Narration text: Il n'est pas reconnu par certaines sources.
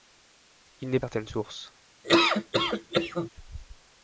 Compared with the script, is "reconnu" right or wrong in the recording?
wrong